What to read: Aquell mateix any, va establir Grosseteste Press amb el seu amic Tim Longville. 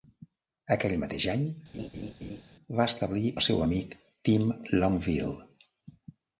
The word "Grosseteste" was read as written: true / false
false